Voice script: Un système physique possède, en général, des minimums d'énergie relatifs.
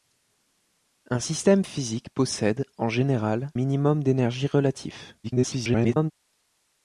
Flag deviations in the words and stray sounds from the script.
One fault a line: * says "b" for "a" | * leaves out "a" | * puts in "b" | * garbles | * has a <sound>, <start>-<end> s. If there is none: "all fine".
* leaves out "des"
* garbles